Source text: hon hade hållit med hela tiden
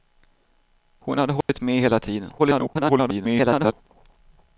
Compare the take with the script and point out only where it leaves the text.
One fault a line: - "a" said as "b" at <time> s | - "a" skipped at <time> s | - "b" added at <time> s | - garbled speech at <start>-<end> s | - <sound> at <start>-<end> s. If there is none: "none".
- dropout at 1.4-1.5 s
- garbled speech at 2.4-3.7 s